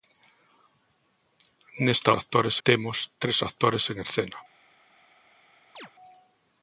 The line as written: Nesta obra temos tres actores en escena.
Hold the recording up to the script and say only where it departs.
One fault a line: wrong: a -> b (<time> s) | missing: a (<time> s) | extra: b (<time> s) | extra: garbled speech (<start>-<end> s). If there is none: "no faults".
wrong: obra -> actores (2.1 s)